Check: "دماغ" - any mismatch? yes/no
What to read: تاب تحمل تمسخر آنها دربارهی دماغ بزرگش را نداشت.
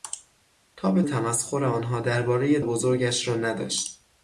yes